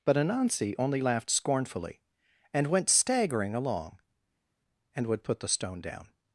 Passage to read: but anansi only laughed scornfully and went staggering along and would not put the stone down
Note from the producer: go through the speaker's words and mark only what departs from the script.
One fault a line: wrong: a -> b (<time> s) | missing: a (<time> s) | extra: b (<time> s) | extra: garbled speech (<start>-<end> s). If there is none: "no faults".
missing: not (5.2 s)